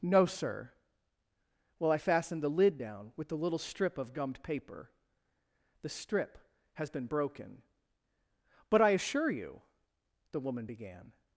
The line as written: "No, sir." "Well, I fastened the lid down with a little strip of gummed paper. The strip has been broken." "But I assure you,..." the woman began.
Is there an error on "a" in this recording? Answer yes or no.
yes